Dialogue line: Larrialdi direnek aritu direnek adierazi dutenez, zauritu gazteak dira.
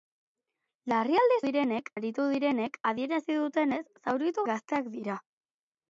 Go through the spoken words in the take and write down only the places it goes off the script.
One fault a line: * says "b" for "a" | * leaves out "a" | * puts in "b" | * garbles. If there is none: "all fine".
all fine